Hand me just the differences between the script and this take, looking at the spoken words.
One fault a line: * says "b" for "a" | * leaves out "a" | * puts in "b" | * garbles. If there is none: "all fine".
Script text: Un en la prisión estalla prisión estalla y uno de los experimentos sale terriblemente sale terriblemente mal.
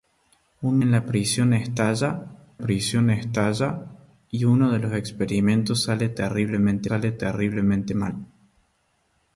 all fine